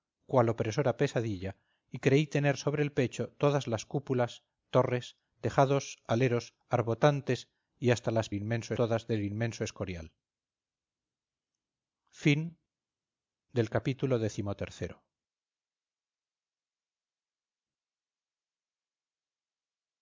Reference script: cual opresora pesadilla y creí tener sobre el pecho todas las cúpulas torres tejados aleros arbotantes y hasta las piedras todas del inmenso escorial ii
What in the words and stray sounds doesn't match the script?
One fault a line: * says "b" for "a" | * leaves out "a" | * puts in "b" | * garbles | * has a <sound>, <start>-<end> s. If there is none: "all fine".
* says "inmenso" for "piedras"